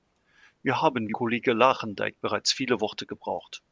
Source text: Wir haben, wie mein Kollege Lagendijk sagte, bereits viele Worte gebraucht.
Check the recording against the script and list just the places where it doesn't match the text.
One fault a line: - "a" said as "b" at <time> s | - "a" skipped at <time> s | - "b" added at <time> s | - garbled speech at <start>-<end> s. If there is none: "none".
- "mein" skipped at 1.1 s
- "sagte" skipped at 2.2 s